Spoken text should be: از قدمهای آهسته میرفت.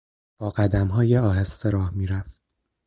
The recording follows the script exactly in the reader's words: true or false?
false